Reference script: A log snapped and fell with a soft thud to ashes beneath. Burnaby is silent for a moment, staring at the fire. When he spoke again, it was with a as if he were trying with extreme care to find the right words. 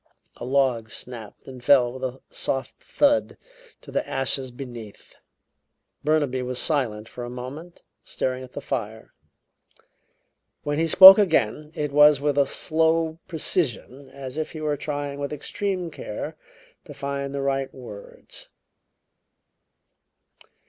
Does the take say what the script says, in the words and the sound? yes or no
no